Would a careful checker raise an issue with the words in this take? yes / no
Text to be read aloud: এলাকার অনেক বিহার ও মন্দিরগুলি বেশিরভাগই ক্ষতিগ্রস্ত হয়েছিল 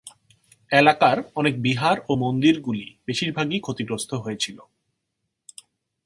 no